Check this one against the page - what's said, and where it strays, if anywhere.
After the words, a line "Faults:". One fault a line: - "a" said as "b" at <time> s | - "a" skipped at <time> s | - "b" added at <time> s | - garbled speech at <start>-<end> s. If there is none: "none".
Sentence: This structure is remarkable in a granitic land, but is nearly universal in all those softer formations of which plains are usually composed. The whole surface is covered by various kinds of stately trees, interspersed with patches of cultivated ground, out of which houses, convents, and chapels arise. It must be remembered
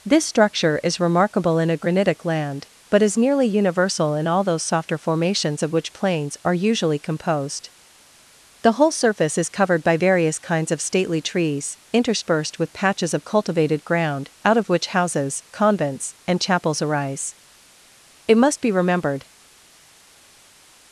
This structure is remarkable in a granitic land, but is nearly universal in all those softer formations of which plains are usually composed. The whole surface is covered by various kinds of stately trees, interspersed with patches of cultivated ground, out of which houses, convents, and chapels arise. It must be remembered
Faults:
none